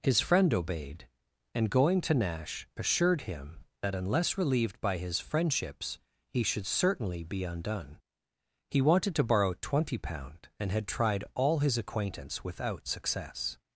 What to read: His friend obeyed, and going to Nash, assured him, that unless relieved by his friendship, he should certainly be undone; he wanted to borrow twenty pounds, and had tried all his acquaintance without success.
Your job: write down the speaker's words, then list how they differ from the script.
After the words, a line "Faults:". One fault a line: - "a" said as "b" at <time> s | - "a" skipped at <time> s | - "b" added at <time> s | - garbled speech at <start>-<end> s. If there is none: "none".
His friend obeyed, and going to Nash, assured him, that unless relieved by his friendships, he should certainly be undone; he wanted to borrow twenty pound, and had tried all his acquaintance without success.
Faults:
- "friendship" said as "friendships" at 5.2 s
- "pounds" said as "pound" at 10.0 s